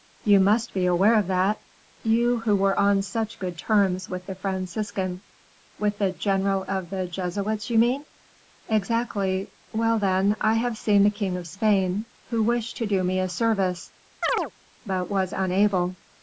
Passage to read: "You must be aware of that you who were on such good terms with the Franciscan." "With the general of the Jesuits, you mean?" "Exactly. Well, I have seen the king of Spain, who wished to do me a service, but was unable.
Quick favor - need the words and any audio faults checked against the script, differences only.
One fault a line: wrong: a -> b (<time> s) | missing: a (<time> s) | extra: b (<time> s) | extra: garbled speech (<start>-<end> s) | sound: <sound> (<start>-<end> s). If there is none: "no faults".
extra: then (10.0 s)
sound: chirp (14.2-14.5 s)